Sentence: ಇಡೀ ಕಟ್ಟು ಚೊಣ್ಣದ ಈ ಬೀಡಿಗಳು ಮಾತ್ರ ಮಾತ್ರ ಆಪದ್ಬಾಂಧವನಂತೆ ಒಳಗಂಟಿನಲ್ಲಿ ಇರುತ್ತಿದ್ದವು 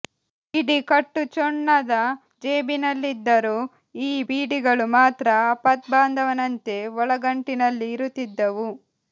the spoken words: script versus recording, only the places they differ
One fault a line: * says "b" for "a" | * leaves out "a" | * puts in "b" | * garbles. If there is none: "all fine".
* puts in "ಜೇಬಿನಲ್ಲಿದ್ದರೂ"
* leaves out "ಮಾತ್ರ"